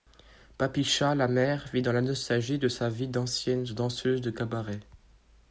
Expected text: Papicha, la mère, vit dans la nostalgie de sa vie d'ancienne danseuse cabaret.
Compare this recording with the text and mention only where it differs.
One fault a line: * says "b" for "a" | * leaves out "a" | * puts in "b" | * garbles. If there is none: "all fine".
* puts in "de"